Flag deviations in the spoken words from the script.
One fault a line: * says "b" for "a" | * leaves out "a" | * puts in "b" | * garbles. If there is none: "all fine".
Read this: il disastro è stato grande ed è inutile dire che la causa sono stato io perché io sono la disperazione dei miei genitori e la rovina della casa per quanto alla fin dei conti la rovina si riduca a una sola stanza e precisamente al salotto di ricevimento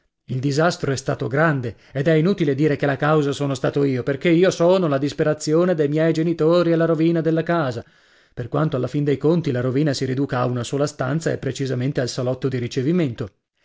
all fine